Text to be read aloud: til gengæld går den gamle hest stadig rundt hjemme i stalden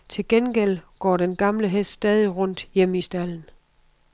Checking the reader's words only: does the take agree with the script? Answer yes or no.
yes